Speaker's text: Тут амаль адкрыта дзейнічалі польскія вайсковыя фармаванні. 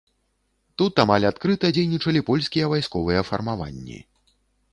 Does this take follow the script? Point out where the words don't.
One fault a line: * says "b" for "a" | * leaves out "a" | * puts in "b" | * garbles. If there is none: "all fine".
all fine